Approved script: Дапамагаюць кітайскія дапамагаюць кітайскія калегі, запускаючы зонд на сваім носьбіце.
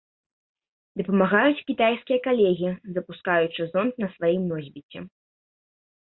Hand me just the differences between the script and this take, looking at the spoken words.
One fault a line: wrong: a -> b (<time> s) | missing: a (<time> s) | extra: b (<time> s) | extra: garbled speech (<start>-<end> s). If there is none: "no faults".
missing: дапамагаюць кітайскія (2.2 s)